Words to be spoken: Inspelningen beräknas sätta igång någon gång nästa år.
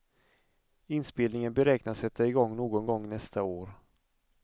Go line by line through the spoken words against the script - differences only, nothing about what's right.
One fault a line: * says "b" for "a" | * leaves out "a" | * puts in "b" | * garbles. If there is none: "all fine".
all fine